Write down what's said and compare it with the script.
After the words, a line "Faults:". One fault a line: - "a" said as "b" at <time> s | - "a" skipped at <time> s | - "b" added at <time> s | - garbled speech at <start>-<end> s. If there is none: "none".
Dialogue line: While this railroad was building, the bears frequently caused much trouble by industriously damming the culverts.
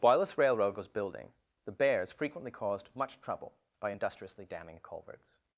While this railroad was building, the bears frequently caused much trouble by industriously damming culverts.
Faults:
- "the" skipped at 4.8 s